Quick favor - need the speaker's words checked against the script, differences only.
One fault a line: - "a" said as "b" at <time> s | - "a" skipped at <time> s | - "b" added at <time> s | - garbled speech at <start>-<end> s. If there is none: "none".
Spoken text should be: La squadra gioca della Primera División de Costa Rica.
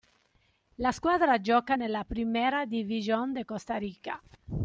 - "della" said as "nella" at 1.7 s